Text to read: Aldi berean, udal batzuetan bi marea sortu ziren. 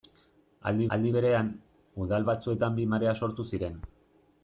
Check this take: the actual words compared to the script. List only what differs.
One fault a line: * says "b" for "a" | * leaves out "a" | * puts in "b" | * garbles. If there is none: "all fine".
* puts in "aldi"